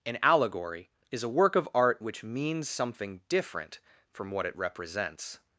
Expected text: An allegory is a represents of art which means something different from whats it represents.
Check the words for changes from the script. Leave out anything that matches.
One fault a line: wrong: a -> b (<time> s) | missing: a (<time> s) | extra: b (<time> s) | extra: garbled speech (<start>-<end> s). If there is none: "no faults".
wrong: represents -> work (1.3 s)
wrong: whats -> what (4.3 s)